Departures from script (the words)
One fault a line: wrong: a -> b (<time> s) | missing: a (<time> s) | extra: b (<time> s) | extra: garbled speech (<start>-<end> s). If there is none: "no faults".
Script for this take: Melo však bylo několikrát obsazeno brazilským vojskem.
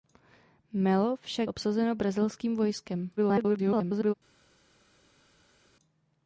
missing: bylo několikrát (1.5 s)
extra: garbled speech (3.2-4.1 s)